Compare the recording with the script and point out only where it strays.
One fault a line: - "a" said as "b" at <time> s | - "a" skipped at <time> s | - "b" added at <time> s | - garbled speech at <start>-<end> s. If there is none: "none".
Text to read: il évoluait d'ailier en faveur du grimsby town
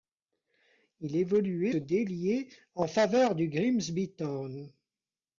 none